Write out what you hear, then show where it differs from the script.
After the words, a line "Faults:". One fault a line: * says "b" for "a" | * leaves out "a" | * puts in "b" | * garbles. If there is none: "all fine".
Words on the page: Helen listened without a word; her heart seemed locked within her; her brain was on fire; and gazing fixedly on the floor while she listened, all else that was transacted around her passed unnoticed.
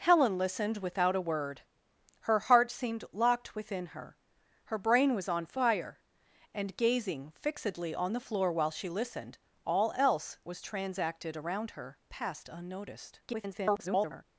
Helen listened without a word; her heart seemed locked within her; her brain was on fire; and gazing fixedly on the floor while she listened, all else was transacted around her passed unnoticed. [garbled]
Faults:
* leaves out "that"
* garbles